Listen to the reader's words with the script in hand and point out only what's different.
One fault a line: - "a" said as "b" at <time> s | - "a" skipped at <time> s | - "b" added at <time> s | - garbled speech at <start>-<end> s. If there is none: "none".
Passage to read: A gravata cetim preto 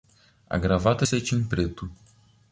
none